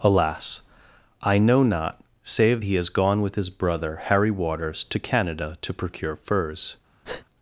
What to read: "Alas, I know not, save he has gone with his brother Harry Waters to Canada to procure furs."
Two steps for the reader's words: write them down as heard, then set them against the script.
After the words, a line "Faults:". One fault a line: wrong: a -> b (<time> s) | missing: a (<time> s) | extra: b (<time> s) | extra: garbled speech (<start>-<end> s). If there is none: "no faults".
"Alas, I know not, save he has gone with his brother Harry Waters to Canada to procure furs."
Faults:
no faults